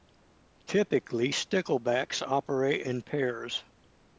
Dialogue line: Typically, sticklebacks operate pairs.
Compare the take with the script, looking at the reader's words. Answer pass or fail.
fail